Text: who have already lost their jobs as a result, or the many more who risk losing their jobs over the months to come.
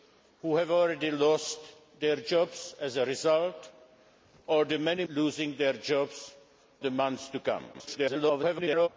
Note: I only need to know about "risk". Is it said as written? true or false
false